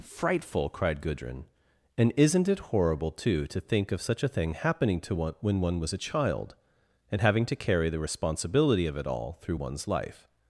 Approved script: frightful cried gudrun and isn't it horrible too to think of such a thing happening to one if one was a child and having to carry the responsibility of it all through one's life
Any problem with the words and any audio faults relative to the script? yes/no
yes